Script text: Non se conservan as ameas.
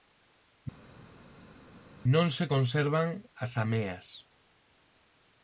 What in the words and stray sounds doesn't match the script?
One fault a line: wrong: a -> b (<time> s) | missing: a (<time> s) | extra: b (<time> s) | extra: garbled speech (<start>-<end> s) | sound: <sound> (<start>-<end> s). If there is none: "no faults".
no faults